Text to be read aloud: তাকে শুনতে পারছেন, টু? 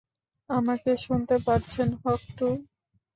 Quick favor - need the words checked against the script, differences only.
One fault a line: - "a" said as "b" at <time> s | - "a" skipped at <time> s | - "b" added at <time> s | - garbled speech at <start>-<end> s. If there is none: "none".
- "তাকে" said as "আমাকে" at 0.5 s
- "হক" added at 2.0 s